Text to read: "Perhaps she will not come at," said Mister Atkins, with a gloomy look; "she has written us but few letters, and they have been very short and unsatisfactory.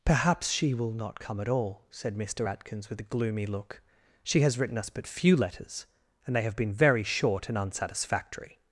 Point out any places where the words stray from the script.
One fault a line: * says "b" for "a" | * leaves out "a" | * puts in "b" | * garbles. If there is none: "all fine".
* puts in "all"